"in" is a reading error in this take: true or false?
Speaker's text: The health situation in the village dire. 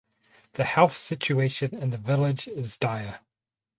false